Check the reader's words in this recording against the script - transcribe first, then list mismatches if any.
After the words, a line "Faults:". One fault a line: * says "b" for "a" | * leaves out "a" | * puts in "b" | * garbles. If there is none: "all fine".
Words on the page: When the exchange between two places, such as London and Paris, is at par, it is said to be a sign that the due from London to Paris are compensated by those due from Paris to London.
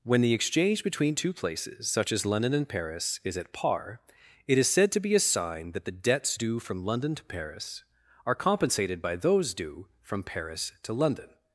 When the exchange between two places, such as London and Paris, is at par, it is said to be a sign that the debts due from London to Paris are compensated by those due from Paris to London.
Faults:
* puts in "debts"